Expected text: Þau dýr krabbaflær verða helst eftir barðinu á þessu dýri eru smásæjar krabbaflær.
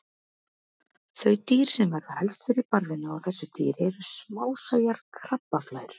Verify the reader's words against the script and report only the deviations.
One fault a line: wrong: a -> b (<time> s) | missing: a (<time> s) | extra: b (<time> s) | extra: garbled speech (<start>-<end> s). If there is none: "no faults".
wrong: krabbaflær -> sem (1.7 s)
wrong: eftir -> fyrir (2.5 s)